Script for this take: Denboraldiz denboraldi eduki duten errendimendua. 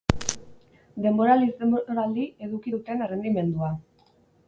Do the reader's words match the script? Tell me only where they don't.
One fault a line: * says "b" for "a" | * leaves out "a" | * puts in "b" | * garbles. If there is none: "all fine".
all fine